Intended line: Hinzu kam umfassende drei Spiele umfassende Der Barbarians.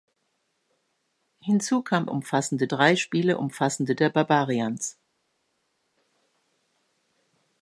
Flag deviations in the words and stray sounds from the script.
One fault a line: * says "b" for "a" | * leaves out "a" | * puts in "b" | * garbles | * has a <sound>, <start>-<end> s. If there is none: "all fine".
all fine